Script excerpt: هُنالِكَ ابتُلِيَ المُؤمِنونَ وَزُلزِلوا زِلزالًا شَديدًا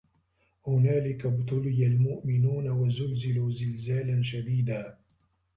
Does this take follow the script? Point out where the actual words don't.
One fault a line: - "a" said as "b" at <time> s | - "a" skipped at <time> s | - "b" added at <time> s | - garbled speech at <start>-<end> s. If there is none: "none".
none